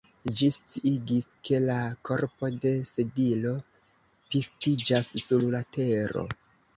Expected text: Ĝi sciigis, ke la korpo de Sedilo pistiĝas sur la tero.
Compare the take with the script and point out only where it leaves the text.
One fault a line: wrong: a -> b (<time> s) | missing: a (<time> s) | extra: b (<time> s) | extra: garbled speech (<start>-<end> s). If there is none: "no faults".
no faults